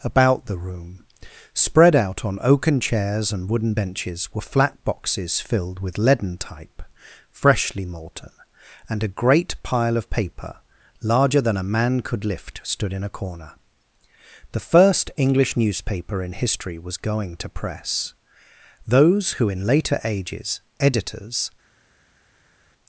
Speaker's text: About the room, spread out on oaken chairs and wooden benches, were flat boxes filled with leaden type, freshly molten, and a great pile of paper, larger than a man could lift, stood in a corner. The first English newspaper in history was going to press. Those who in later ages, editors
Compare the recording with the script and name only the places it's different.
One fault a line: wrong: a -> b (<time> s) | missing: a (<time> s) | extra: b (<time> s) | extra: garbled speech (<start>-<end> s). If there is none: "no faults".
no faults